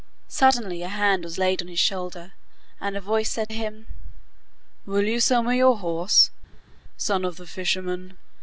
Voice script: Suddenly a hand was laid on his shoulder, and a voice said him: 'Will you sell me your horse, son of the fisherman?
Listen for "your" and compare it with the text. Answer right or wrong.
right